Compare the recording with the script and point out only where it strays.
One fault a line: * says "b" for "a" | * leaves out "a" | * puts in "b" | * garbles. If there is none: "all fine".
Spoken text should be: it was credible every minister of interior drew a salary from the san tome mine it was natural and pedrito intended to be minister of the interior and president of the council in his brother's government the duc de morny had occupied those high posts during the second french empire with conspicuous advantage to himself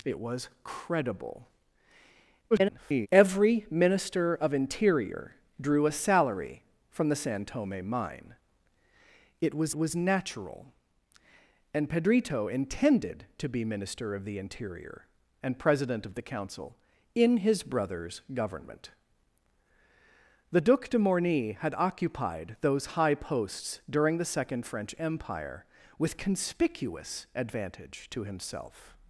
* garbles
* puts in "was"